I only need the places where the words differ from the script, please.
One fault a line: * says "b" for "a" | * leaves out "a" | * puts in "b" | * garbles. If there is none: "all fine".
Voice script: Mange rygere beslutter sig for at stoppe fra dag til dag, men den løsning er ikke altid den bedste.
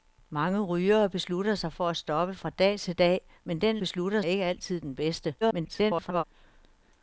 * says "beslutter" for "løsning"
* garbles